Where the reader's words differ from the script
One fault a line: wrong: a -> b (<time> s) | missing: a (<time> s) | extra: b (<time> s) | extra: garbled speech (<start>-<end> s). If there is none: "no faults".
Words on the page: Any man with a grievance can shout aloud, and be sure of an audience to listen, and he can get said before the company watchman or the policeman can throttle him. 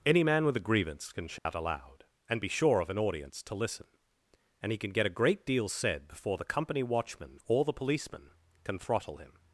extra: a great deal (5.0 s)